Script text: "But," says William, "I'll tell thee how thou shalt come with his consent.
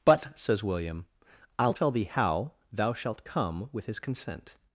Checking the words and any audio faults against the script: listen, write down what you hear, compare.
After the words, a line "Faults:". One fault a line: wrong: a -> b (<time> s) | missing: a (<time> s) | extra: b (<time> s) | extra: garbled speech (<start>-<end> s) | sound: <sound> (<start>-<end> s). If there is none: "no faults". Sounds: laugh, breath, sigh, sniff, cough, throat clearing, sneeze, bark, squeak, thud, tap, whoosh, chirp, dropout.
"But," says William, "I'll tell thee how thou shalt come with his consent.
Faults:
no faults